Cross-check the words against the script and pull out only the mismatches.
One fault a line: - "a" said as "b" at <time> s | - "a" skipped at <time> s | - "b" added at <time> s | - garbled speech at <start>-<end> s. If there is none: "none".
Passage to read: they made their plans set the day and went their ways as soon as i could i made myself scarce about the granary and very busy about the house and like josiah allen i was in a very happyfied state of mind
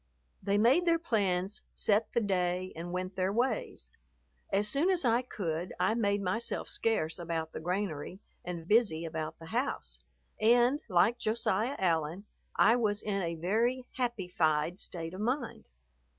- "very" skipped at 8.6 s